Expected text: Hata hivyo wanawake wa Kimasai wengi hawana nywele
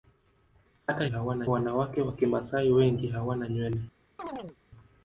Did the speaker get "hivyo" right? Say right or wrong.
wrong